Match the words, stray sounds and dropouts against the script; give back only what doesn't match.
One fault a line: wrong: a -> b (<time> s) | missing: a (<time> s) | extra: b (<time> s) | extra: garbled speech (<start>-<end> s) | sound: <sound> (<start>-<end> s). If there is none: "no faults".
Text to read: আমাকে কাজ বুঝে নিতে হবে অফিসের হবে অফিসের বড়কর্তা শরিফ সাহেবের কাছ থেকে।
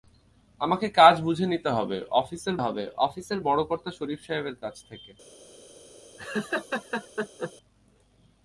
sound: laugh (6.2-7.5 s)